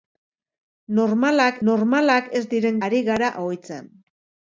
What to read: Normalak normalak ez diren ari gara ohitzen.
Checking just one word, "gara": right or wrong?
right